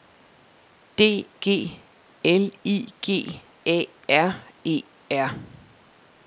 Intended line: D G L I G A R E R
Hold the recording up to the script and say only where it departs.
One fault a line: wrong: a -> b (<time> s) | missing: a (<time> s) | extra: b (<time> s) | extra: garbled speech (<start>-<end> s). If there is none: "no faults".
no faults